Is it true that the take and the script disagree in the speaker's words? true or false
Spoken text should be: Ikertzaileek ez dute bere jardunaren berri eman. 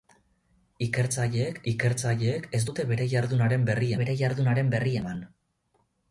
true